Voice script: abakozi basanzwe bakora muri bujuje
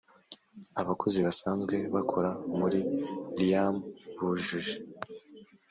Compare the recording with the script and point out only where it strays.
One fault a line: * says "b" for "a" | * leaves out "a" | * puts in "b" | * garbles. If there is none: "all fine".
* puts in "riam"